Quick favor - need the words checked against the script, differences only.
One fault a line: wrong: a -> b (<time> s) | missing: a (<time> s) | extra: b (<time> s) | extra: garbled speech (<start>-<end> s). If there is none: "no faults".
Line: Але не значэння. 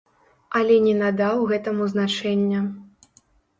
extra: надаў гэтаму (1.0 s)